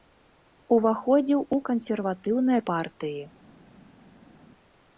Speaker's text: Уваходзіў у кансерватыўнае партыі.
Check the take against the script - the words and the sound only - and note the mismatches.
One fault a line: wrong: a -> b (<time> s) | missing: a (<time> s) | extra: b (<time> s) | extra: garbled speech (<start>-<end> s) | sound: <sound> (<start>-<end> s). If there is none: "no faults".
no faults